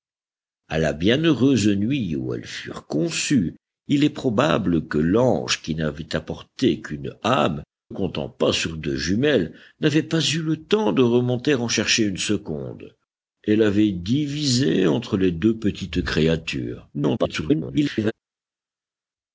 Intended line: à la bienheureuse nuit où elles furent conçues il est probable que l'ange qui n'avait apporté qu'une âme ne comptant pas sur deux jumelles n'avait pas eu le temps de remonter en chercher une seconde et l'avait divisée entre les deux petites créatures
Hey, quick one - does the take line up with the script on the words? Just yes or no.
no